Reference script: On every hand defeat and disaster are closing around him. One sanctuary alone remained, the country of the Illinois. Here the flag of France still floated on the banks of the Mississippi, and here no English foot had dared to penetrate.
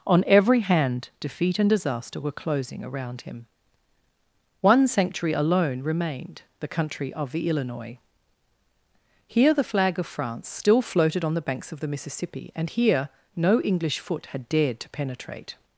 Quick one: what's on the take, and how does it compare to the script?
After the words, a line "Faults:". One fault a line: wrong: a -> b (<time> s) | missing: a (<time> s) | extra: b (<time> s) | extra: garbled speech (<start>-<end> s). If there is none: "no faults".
On every hand defeat and disaster were closing around him. One sanctuary alone remained, the country of the Illinois. Here the flag of France still floated on the banks of the Mississippi, and here no English foot had dared to penetrate.
Faults:
wrong: are -> were (2.2 s)